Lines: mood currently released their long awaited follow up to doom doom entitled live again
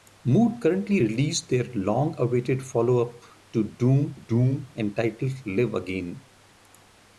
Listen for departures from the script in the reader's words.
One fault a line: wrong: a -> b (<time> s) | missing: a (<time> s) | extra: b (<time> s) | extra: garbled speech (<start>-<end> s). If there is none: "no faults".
no faults